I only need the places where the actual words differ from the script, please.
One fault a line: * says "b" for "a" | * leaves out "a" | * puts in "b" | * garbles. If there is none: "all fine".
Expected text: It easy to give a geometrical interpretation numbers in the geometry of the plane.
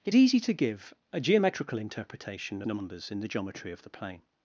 all fine